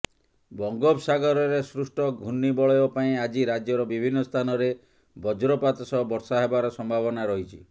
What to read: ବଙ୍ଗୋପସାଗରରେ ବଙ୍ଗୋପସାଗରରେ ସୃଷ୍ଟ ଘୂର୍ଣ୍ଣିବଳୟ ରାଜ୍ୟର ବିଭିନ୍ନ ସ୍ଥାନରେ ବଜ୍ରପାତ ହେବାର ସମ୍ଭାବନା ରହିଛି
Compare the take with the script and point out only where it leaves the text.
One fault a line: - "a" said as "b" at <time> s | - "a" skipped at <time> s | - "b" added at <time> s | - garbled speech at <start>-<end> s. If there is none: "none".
- "ବଙ୍ଗୋପସାଗରରେ" skipped at 1.6 s
- "ପାଇଁ ଆଜି" added at 3.0 s
- "ସହ ବର୍ଷା" added at 5.9 s